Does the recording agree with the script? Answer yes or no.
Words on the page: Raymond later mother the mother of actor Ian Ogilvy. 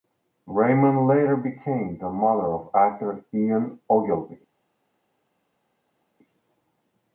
no